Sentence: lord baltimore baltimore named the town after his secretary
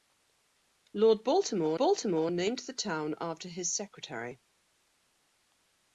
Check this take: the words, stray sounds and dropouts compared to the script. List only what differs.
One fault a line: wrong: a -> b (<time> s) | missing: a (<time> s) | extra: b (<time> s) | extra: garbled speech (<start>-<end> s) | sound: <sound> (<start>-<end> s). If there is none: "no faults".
no faults